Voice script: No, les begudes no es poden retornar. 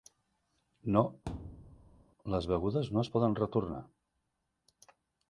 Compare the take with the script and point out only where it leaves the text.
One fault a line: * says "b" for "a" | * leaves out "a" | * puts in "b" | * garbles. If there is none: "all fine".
all fine